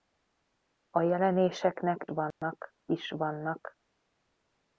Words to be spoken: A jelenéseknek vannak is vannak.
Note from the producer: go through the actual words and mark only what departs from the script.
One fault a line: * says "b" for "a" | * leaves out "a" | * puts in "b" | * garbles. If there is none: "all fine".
all fine